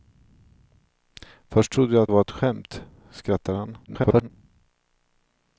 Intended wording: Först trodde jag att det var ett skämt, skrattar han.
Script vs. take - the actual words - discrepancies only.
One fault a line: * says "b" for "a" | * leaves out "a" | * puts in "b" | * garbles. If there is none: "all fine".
* leaves out "det"
* garbles